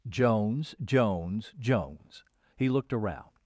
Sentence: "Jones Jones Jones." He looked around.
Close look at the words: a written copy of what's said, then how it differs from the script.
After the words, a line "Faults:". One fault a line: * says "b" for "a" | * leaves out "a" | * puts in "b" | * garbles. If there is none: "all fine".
"Jones Jones Jones." He looked around.
Faults:
all fine